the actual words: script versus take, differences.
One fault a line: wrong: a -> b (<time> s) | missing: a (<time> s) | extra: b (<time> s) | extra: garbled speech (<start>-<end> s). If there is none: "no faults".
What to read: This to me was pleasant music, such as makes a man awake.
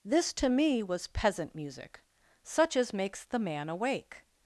wrong: pleasant -> peasant (1.1 s)
wrong: a -> the (3.2 s)